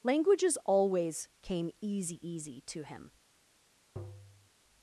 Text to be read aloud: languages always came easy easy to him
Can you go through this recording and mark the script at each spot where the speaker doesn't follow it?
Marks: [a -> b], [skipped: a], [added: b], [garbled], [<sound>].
languages always came easy easy to him [tap]